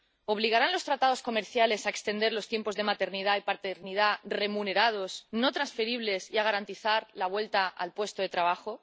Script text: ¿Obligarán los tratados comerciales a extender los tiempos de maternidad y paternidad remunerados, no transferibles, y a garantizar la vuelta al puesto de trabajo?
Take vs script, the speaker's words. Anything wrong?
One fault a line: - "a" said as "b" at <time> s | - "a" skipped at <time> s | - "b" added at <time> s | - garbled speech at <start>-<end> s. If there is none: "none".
none